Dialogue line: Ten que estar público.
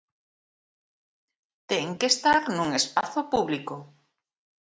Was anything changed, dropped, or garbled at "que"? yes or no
no